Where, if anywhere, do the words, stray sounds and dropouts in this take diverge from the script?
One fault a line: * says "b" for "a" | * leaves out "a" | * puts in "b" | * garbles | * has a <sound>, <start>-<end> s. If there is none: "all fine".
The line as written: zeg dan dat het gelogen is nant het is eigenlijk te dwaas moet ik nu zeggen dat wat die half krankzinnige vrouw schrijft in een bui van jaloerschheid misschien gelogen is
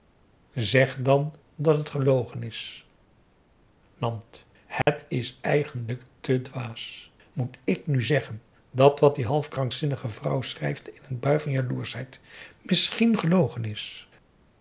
* has a dropout, 4.8-4.9 s